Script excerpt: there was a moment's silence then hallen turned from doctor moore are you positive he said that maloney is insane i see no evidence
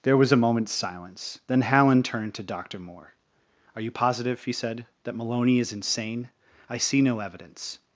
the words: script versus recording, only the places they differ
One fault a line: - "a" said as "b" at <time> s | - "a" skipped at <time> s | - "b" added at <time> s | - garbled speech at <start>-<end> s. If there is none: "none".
- "from" said as "to" at 2.3 s